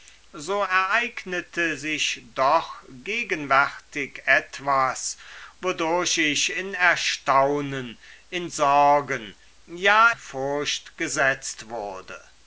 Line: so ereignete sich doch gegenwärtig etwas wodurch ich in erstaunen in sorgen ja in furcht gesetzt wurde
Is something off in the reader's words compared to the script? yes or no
yes